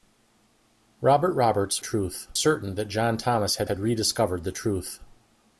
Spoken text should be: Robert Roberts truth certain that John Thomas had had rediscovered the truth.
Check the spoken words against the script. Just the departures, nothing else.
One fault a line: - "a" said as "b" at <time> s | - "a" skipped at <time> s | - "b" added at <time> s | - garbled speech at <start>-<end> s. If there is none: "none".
none